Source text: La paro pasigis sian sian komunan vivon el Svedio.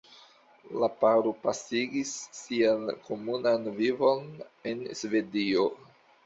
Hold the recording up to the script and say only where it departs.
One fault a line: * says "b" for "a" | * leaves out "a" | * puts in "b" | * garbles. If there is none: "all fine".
* leaves out "sian"
* says "en" for "el"